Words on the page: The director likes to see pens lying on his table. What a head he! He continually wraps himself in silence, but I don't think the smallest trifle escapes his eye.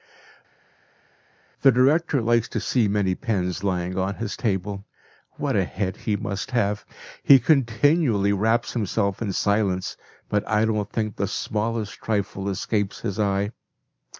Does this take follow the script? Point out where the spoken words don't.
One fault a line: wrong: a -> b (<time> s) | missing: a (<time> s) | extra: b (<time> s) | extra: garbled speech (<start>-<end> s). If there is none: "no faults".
extra: many (2.9 s)
extra: must have (6.2 s)